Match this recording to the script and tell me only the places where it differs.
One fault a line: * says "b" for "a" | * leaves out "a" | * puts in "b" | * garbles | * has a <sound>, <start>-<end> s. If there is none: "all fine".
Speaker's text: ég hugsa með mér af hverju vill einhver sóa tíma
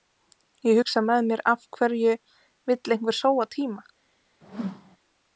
* has a whoosh, 4.4-5.0 s